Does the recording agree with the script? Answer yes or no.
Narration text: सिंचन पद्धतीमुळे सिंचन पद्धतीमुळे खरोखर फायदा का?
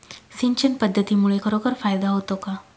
no